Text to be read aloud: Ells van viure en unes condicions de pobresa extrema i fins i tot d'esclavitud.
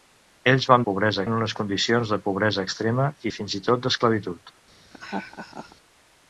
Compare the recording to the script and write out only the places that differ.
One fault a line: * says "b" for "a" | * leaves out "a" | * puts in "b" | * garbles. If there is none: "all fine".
* says "pobresa" for "viure"